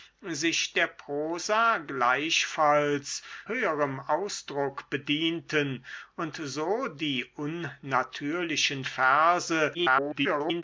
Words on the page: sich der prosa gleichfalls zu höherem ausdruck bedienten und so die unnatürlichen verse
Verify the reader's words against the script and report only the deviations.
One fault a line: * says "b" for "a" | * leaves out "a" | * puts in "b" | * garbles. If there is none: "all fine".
* leaves out "zu"
* garbles